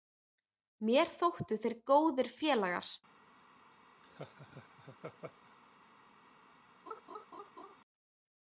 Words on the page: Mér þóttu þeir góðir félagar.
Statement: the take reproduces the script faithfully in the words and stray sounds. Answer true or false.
false